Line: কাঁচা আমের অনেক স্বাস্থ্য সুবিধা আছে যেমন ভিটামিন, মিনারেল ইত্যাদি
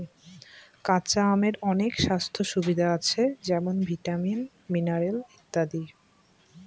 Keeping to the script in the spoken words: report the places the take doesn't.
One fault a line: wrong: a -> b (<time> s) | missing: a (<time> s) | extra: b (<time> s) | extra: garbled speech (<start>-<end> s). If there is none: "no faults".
no faults